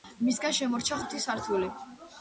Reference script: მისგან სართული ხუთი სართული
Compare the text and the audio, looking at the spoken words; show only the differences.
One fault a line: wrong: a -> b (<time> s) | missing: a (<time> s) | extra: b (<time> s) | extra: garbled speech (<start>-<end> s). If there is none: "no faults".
wrong: სართული -> შემორჩა (0.6 s)